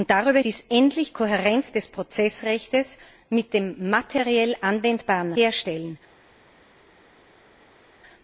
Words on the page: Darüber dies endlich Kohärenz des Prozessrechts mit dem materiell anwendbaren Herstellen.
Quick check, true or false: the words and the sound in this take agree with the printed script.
true